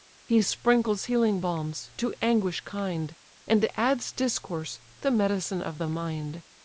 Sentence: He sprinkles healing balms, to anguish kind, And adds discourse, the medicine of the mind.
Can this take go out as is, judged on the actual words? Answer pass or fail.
pass